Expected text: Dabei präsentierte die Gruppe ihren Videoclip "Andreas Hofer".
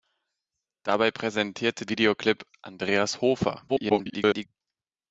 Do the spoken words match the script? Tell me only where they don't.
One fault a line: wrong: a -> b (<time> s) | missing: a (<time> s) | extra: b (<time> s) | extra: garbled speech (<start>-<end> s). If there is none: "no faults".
missing: die Gruppe ihren (1.9 s)
extra: garbled speech (3.7-4.5 s)